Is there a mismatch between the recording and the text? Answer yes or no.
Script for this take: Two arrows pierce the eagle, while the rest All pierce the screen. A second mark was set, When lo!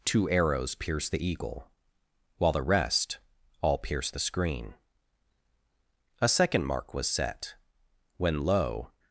no